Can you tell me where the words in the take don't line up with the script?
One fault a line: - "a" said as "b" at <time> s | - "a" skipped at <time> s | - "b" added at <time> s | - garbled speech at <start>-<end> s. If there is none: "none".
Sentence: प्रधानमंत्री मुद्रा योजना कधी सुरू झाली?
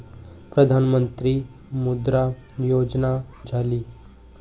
- "कधी सुरू" skipped at 3.2 s